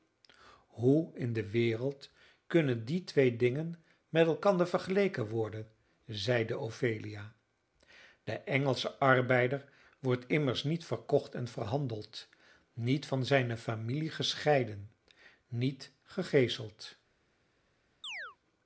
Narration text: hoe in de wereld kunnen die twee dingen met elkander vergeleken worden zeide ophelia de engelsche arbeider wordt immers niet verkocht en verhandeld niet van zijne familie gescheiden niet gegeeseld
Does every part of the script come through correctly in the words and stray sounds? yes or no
no